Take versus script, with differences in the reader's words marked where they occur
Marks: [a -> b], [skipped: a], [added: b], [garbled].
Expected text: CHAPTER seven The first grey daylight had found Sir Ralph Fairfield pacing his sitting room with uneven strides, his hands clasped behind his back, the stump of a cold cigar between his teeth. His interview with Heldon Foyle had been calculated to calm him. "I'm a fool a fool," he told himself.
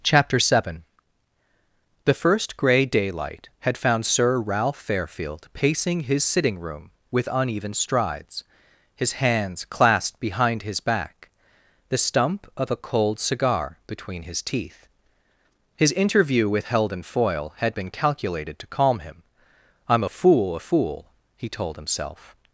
CHAPTER seven The first grey daylight had found Sir Ralph Fairfield pacing his sitting room with uneven strides, his hands clasped behind his back, the stump of a cold cigar between his teeth. His interview with Heldon Foyle had been calculated to calm him. "I'm a fool a fool," he told himself.